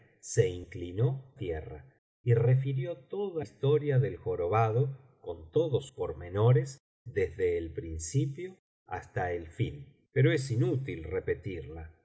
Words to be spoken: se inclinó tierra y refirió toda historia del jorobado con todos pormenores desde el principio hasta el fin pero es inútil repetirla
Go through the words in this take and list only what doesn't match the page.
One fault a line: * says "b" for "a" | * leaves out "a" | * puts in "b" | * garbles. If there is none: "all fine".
all fine